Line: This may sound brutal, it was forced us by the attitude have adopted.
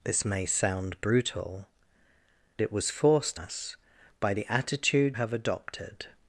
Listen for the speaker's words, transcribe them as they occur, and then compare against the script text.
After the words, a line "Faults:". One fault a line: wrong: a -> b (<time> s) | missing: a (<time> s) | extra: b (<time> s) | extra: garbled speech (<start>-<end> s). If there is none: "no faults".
This may sound brutal, it was forced us by the attitude have adopted.
Faults:
no faults